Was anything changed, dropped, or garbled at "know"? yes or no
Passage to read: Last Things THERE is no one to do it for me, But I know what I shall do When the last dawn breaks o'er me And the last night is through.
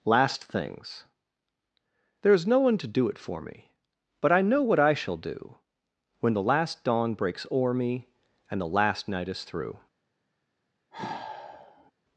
no